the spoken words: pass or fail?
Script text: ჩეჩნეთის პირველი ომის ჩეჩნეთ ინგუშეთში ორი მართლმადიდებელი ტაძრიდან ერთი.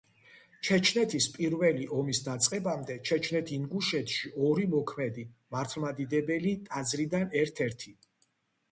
fail